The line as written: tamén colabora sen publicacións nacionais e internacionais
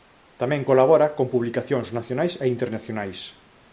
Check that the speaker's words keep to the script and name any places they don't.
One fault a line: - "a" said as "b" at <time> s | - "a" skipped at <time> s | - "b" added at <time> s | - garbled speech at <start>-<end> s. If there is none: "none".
- "sen" said as "con" at 1.2 s